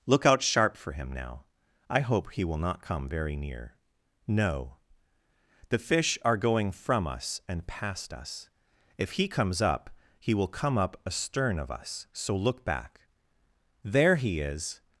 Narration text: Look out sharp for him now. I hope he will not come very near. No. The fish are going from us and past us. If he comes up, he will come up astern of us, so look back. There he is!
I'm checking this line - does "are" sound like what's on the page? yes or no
yes